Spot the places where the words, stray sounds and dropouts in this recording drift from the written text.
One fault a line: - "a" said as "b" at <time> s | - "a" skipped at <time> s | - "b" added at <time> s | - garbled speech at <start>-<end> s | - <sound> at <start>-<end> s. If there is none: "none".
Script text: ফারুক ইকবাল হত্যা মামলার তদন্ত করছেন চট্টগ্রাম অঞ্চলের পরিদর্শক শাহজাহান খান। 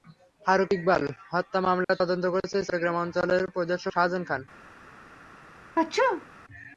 - dropout at 1.8-1.9 s
- sneeze at 5.8-6.3 s